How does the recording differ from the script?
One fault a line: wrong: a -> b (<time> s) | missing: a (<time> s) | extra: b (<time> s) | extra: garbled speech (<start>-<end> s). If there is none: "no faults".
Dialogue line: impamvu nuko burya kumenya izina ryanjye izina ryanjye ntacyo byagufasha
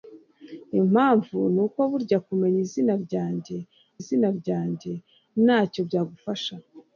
no faults